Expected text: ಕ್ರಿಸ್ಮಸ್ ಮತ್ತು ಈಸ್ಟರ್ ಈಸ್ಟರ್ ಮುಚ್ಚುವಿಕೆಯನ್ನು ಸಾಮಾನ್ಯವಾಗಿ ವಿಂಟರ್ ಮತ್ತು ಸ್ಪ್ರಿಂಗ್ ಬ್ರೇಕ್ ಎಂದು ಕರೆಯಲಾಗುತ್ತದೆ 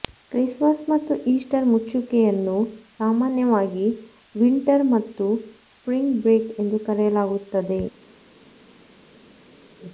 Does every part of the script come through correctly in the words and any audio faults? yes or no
no